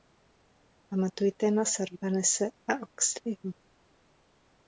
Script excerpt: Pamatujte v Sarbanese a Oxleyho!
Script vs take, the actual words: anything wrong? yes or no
yes